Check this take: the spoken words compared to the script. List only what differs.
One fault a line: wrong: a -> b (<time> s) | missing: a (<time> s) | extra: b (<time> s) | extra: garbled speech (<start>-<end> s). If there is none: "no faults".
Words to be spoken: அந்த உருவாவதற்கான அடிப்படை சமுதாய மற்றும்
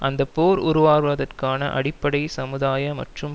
extra: போர் (0.3 s)